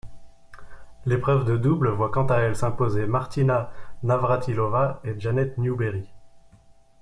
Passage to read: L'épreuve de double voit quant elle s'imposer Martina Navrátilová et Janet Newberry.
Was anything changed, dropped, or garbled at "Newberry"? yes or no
no